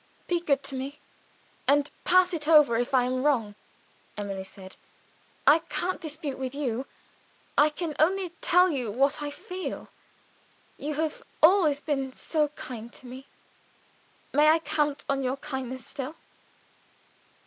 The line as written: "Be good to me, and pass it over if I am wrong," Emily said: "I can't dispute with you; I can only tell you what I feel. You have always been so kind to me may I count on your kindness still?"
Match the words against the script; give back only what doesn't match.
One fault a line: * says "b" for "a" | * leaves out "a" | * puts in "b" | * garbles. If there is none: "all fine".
all fine